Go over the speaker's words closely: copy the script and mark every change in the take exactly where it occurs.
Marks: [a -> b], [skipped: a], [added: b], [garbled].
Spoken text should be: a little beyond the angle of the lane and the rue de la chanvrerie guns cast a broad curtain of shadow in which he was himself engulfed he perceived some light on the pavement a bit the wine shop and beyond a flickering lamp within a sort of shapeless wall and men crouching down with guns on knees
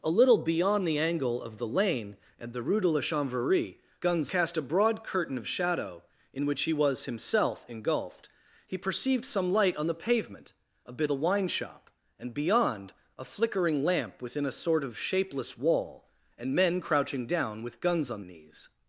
a little beyond the angle of the lane and the rue de la chanvrerie guns cast a broad curtain of shadow in which he was himself engulfed he perceived some light on the pavement a bit the wine shop and beyond a flickering lamp within a sort of shapeless wall and men crouching down with guns on knees